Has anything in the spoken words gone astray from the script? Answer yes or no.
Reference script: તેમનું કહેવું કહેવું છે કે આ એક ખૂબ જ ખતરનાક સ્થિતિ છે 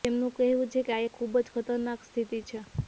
yes